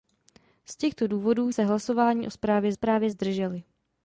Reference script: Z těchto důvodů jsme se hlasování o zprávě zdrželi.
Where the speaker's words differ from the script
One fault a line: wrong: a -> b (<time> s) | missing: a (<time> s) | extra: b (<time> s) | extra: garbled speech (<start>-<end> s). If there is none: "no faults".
missing: jsme (1.5 s)
extra: zprávě (2.7 s)